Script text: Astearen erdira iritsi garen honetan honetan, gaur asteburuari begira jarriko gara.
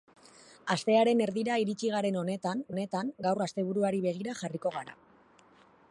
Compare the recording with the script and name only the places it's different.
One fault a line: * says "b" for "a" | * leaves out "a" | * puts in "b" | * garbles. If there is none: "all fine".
all fine